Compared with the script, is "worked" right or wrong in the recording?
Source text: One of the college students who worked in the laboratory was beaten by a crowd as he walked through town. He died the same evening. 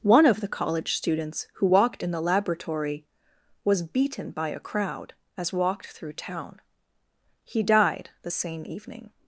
wrong